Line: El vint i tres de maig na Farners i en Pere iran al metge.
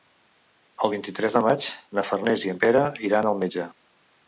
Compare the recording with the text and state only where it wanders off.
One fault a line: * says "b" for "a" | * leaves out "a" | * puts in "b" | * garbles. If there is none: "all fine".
all fine